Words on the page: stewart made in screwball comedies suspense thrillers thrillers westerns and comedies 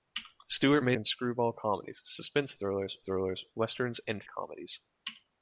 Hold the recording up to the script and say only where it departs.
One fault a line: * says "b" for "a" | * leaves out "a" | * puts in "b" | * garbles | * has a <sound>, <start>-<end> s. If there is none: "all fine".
all fine